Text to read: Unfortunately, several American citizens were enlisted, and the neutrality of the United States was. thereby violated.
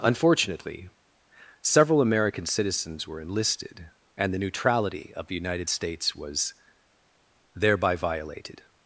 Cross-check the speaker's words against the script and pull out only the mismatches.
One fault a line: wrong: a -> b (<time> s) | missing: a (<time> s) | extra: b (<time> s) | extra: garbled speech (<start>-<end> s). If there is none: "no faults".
no faults